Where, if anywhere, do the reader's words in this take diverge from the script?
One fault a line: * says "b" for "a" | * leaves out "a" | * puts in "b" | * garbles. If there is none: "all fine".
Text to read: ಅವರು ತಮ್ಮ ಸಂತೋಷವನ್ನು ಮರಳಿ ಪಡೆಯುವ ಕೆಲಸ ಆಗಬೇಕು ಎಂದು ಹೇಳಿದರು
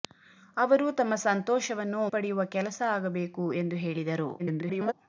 * leaves out "ಮರಳಿ"
* garbles